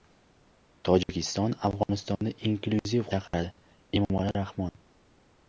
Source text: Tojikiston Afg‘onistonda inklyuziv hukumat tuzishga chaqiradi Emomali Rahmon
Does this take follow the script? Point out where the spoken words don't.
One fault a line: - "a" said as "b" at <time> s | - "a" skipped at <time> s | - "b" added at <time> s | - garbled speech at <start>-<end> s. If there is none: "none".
- "hukumat tuzishga" skipped at 3.0 s